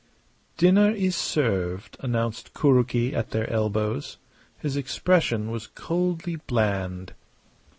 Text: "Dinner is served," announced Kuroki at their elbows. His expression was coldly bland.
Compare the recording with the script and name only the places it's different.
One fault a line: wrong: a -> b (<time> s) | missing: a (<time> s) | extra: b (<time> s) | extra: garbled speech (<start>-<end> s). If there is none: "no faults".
no faults